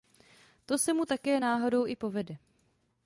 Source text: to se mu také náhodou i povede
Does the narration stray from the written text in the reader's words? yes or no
no